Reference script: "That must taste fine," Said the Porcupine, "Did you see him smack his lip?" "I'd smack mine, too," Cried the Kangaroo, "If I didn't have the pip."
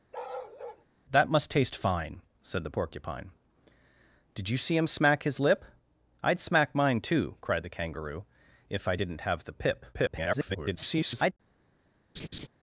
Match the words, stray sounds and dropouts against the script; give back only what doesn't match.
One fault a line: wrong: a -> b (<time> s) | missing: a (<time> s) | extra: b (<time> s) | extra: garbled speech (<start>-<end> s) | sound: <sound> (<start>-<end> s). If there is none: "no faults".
sound: bark (0.1-0.9 s)
extra: garbled speech (9.9-11.3 s)
sound: laugh (12.2-12.5 s)